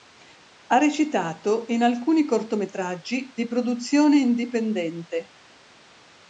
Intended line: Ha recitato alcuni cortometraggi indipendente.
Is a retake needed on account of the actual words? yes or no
yes